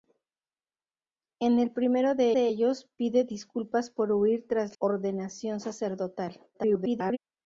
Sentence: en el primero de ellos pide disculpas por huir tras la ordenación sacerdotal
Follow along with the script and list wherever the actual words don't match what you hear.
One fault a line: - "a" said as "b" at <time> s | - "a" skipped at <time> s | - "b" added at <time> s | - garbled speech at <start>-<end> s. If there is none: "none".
- "de" added at 2.3 s
- "la" skipped at 4.8 s
- garbled speech at 6.5-7.2 s